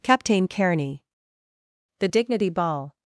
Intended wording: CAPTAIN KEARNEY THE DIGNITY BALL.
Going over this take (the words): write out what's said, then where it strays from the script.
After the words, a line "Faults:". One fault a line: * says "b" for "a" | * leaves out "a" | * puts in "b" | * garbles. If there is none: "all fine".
CAPTAIN KEARNEY THE DIGNITY BALL.
Faults:
all fine